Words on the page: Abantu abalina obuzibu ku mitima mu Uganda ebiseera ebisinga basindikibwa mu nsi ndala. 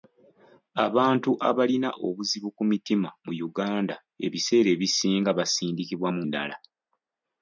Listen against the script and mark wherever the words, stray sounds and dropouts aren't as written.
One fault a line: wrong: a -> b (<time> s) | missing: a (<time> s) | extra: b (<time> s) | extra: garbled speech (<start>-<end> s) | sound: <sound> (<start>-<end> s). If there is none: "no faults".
missing: nsi (6.2 s)